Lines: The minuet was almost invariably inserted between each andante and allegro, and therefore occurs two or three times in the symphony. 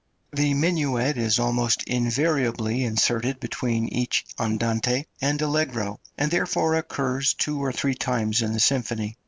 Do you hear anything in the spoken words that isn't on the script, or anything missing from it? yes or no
yes